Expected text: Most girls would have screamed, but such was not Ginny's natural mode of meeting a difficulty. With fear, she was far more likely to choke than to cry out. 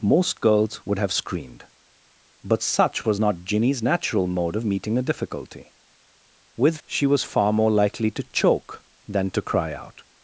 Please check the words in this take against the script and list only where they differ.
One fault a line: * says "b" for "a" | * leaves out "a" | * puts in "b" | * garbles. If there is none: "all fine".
* leaves out "fear"